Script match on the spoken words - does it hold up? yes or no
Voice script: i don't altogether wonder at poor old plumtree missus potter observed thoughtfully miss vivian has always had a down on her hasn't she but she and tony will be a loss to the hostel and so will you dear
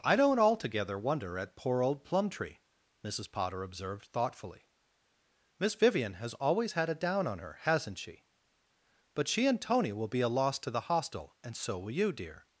yes